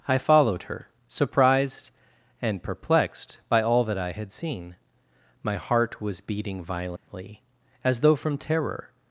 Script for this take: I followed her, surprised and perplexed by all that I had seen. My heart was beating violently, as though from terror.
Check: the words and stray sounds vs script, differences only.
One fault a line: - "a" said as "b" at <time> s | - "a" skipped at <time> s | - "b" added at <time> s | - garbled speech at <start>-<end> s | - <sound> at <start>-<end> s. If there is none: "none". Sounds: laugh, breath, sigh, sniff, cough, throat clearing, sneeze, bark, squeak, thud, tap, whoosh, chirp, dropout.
- dropout at 7.0-7.1 s